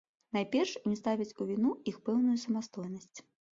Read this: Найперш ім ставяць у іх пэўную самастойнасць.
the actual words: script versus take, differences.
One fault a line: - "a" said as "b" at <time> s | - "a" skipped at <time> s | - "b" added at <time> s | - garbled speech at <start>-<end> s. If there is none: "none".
- "віну" added at 1.5 s